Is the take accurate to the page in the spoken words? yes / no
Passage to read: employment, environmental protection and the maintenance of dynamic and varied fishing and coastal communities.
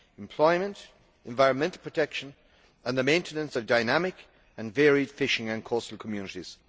yes